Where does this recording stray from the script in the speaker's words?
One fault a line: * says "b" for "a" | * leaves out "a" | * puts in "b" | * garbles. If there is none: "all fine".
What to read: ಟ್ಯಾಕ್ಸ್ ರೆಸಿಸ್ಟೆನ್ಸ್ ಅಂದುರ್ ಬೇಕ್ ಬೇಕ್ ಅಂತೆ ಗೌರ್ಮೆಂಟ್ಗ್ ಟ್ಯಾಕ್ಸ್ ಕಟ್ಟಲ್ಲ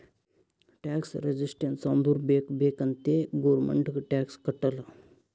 all fine